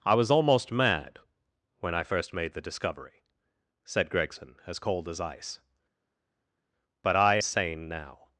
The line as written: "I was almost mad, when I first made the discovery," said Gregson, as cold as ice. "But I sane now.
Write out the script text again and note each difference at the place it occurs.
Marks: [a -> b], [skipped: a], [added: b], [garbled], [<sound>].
"I was almost mad, when I first made the discovery," said Gregson, as cold as ice. "But I sane now.